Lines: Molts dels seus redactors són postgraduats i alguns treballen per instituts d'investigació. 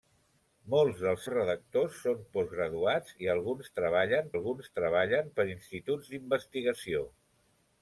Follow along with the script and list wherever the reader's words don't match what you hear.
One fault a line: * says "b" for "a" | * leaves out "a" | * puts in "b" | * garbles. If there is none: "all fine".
* leaves out "seus"
* puts in "alguns treballen"